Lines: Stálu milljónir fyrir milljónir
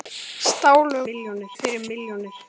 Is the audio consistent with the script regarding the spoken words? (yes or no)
yes